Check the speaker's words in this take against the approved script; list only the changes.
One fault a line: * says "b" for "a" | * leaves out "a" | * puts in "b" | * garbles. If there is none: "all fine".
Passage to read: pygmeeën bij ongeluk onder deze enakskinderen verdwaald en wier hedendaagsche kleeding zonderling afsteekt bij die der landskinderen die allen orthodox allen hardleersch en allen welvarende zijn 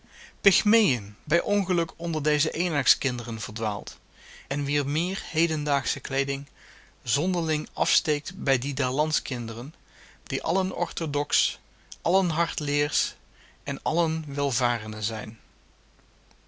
* puts in "meer"